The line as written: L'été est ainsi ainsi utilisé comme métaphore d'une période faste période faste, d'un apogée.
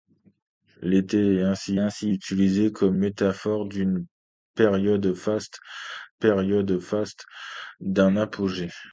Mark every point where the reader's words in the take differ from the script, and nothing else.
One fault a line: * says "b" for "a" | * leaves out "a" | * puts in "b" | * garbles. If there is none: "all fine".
all fine